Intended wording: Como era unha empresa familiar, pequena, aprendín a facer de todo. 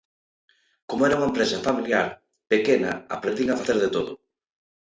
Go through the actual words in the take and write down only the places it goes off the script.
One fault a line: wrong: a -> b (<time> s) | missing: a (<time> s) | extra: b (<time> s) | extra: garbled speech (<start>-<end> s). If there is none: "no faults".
no faults